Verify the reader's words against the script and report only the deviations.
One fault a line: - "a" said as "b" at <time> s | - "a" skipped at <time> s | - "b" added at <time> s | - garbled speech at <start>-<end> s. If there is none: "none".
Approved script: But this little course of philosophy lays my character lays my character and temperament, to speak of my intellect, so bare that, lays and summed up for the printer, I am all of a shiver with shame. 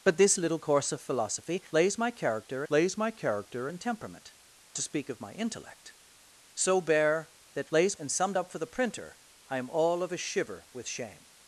none